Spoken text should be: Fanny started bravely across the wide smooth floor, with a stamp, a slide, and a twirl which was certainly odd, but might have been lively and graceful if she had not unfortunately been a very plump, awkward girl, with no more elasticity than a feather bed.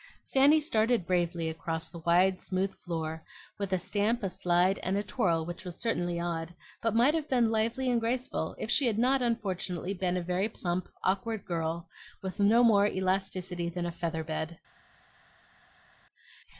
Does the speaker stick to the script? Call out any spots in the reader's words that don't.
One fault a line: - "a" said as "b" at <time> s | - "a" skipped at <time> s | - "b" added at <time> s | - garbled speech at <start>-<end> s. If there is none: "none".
none